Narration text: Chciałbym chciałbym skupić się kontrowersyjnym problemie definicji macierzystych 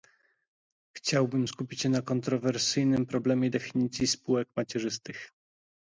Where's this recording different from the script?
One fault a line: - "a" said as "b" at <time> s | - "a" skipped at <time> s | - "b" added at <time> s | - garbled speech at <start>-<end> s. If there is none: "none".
- "chciałbym" skipped at 1.5 s
- "na" added at 1.9 s
- "spółek" added at 4.1 s